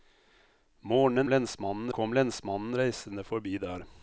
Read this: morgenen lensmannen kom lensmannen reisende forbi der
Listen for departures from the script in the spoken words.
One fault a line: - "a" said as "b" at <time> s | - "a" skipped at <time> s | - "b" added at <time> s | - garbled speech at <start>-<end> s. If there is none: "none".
none